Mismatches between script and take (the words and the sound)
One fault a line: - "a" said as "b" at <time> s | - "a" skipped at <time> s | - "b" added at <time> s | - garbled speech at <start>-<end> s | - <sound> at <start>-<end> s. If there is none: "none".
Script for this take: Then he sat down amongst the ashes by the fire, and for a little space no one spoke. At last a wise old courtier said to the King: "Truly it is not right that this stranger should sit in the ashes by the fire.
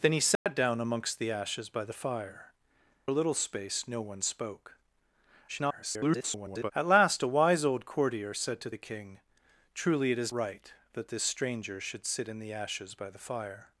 - dropout at 0.4-0.5 s
- "and for" skipped at 2.5 s
- garbled speech at 5.5-6.7 s
- "not" skipped at 10.3 s